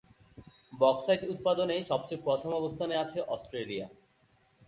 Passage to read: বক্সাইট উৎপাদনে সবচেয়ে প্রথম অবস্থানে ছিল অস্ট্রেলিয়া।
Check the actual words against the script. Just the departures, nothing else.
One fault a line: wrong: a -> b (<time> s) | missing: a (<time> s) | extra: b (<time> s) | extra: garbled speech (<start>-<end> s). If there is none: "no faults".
wrong: ছিল -> আছে (3.0 s)